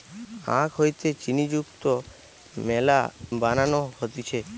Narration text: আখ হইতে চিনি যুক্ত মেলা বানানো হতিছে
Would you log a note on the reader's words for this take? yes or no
no